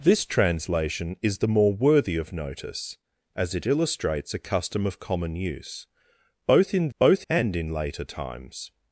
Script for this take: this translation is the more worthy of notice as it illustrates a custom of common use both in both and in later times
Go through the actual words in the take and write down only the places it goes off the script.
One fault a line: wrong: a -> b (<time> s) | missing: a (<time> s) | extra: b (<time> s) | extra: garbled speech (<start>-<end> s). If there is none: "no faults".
no faults